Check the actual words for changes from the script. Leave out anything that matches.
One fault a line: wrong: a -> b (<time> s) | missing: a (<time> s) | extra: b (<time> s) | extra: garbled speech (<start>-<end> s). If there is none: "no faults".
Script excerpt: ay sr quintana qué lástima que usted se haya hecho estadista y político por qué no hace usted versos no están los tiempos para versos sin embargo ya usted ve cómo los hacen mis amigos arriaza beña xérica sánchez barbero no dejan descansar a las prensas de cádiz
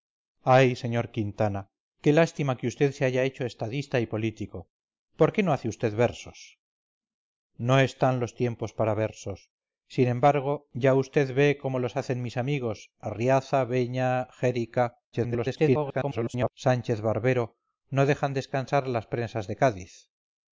extra: garbled speech (15.1-16.5 s)